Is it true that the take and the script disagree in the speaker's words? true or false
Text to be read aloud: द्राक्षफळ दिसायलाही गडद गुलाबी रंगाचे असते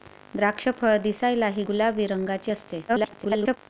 true